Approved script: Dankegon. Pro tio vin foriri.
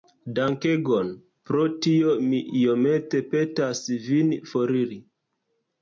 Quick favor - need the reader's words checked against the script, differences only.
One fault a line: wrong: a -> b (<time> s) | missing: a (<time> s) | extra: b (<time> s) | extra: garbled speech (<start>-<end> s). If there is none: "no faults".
extra: mi iomete petas (2.3 s)